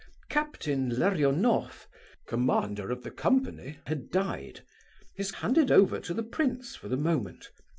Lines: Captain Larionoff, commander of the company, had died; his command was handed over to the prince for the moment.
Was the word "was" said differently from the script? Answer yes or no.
yes